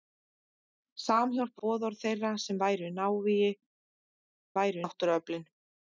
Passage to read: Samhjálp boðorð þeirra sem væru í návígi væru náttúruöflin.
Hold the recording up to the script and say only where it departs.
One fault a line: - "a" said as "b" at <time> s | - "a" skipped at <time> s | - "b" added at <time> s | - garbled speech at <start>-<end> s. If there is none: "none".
none